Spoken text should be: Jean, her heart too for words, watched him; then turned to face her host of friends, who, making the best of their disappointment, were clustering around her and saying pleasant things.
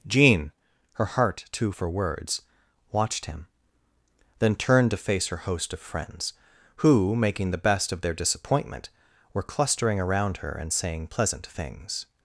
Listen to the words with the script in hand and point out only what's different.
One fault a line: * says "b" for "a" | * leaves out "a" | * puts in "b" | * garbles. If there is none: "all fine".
all fine